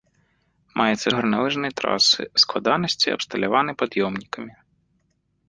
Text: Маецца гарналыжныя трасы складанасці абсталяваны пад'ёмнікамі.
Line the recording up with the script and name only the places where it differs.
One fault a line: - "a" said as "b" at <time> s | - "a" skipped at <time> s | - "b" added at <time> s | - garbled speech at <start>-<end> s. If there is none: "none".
none